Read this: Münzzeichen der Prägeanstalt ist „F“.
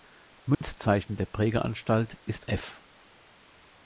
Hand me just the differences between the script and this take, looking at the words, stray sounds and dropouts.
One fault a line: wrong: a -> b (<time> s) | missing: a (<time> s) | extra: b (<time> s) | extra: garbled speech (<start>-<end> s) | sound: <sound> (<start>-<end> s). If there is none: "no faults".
sound: dropout (0.5-0.6 s)